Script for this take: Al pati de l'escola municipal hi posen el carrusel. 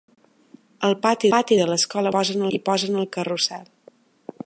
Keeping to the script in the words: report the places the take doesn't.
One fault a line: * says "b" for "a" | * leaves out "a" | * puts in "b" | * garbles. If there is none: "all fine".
* puts in "pati"
* says "posen" for "municipal"